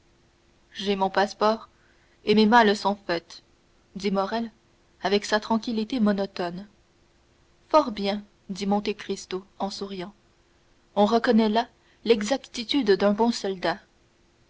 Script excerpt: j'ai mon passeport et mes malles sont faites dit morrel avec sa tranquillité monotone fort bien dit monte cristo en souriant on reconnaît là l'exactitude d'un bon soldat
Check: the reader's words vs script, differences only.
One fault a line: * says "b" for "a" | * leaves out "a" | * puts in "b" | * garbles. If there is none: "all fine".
all fine